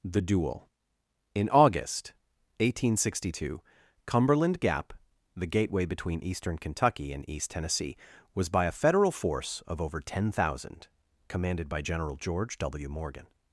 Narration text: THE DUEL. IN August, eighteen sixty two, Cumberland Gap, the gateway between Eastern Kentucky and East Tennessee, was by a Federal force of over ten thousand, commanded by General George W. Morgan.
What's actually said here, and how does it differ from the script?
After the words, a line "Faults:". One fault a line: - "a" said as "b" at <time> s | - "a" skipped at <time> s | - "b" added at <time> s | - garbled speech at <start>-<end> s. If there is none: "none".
THE DUEL. IN August, eighteen sixty two, Cumberland Gap, the gateway between Eastern Kentucky and East Tennessee, was by a Federal force of over ten thousand, commanded by General George W. Morgan.
Faults:
none